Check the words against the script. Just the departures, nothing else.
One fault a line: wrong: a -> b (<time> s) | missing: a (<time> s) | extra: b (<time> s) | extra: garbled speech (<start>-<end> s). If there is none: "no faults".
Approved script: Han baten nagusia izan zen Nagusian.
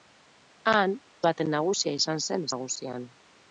no faults